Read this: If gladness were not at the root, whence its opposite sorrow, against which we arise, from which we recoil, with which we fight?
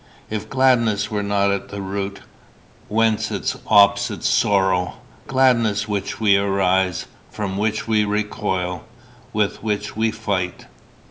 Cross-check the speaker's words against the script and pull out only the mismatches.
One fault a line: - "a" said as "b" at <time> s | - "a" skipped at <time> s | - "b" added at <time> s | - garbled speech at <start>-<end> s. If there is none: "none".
- "against" said as "gladness" at 5.3 s